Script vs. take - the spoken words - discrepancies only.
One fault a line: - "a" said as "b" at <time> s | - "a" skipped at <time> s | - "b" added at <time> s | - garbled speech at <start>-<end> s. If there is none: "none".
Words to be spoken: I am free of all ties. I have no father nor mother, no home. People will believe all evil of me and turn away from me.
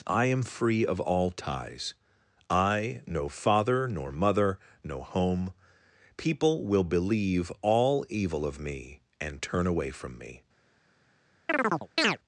- "have" skipped at 3.0 s